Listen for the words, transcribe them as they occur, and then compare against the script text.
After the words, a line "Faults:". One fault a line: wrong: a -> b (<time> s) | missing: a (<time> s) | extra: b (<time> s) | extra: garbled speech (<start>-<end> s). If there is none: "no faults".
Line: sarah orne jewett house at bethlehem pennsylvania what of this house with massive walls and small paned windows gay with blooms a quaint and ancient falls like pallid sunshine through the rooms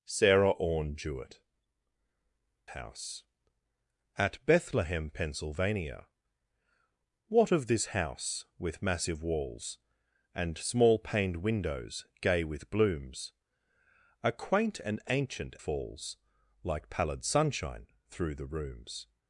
sarah orne jewett house at bethlehem pennsylvania what of this house with massive walls and small paned windows gay with blooms a quaint and ancient falls like pallid sunshine through the rooms
Faults:
no faults